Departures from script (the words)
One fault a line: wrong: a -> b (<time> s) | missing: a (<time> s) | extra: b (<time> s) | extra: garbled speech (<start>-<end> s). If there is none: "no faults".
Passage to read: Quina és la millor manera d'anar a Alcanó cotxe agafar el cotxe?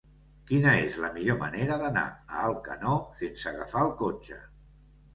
wrong: cotxe -> sense (3.2 s)